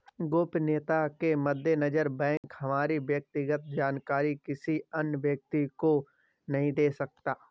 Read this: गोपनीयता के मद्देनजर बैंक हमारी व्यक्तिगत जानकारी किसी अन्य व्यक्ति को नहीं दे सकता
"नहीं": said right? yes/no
yes